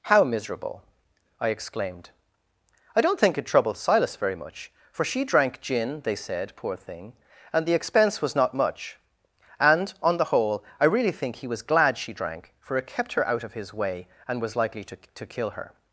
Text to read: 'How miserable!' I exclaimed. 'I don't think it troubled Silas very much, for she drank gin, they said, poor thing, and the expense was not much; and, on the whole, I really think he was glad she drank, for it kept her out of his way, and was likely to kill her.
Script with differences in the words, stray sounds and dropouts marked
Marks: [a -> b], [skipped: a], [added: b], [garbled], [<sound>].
'How miserable!' I exclaimed. 'I don't think it troubled Silas very much, for she drank gin, they said, poor thing, and the expense was not much; and, on the whole, I really think he was glad she drank, for it kept her out of his way, and was likely to [added: to] kill her.